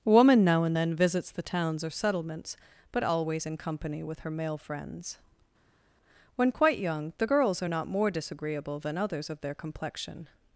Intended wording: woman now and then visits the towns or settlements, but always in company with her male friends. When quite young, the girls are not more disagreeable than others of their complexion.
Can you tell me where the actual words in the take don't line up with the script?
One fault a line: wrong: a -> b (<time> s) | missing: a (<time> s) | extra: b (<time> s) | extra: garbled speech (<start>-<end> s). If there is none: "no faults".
no faults